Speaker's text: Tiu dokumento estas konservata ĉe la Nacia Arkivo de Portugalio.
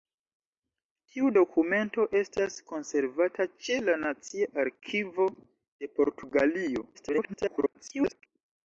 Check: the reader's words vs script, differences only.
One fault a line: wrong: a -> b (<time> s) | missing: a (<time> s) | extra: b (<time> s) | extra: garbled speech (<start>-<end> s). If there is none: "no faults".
extra: garbled speech (6.9-8.3 s)